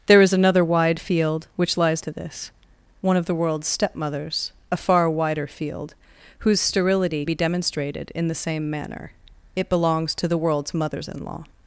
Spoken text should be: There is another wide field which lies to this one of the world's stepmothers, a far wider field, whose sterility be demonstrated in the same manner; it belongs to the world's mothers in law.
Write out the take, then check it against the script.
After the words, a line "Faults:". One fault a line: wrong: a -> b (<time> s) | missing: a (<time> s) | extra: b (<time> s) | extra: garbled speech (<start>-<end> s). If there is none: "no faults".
There is another wide field which lies to this one of the world's stepmothers, a far wider field, whose sterility be demonstrated in the same manner; it belongs to the world's mothers in law.
Faults:
no faults